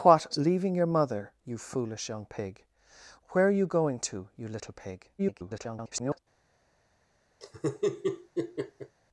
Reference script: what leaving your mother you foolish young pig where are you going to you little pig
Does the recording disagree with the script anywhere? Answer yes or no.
yes